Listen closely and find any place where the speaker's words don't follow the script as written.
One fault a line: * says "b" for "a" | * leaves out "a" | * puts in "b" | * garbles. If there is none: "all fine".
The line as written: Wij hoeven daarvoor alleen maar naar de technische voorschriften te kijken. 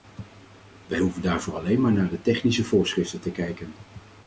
all fine